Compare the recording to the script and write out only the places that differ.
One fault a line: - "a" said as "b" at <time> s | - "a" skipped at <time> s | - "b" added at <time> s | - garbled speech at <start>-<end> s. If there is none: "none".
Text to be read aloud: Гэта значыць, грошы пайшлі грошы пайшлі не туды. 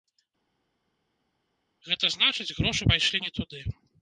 - "грошы пайшлі" skipped at 3.2 s